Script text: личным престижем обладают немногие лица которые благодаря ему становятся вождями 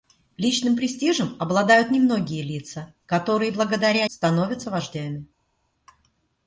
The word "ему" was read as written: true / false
false